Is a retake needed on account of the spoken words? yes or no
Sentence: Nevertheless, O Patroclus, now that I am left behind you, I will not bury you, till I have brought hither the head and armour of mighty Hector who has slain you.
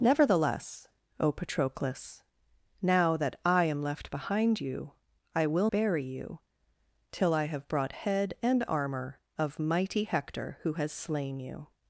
yes